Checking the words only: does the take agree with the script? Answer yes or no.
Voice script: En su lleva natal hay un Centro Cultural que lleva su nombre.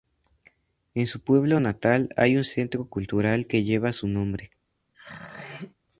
no